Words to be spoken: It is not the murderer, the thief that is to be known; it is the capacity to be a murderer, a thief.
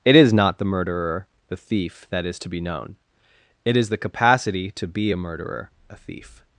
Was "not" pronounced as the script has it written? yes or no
yes